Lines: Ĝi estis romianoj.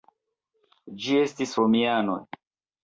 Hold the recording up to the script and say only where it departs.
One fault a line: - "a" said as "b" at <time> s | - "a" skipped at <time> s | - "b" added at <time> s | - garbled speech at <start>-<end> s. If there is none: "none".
none